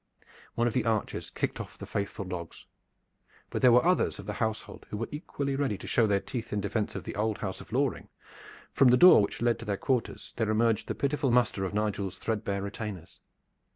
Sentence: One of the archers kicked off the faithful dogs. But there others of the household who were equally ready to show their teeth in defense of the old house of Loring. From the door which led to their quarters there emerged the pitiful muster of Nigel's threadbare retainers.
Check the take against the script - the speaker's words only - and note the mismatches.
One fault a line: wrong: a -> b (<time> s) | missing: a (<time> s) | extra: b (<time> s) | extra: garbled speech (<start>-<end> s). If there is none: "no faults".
extra: were (3.7 s)